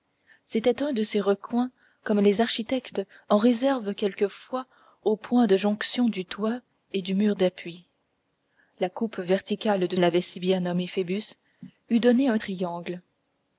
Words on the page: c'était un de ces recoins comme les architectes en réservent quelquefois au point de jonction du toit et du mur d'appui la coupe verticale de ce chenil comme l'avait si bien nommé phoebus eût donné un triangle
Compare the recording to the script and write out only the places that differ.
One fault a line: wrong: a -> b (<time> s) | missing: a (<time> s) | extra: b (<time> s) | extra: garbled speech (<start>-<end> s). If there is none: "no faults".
missing: ce chenil comme (9.9 s)